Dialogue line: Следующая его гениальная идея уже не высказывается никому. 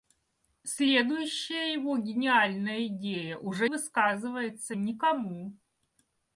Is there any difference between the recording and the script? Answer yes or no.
yes